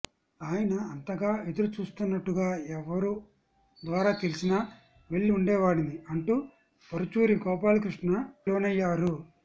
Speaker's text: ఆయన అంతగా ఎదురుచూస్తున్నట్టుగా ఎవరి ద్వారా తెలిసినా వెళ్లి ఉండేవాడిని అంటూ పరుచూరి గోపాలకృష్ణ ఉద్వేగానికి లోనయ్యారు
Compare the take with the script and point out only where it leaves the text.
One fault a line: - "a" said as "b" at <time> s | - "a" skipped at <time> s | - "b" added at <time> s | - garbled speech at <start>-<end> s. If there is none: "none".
- "ఉద్వేగానికి" skipped at 8.1 s